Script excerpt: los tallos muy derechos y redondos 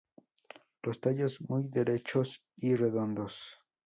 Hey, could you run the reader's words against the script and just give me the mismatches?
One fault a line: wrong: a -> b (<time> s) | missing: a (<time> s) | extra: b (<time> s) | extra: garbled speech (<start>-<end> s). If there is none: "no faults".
no faults